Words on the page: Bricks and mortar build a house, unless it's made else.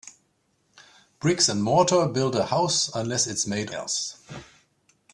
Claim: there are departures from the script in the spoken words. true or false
false